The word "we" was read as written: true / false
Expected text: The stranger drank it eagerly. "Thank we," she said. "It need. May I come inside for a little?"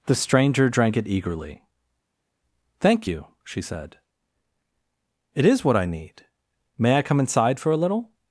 false